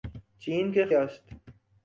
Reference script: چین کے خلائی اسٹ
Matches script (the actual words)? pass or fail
fail